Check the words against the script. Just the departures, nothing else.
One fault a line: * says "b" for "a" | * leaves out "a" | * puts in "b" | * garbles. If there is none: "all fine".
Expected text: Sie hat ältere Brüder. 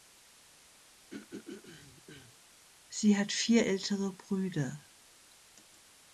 * puts in "vier"